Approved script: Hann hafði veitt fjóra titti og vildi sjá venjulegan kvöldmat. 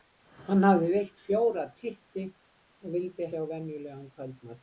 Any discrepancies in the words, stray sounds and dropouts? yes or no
no